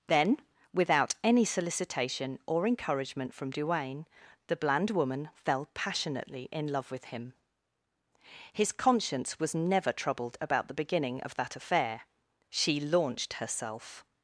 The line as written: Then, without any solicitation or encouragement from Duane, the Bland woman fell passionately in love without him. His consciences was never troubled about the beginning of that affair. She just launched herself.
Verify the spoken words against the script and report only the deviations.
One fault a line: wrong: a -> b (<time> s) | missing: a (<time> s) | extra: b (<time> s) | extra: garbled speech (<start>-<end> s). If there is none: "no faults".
wrong: without -> with (6.9 s)
wrong: consciences -> conscience (8.7 s)
missing: just (12.8 s)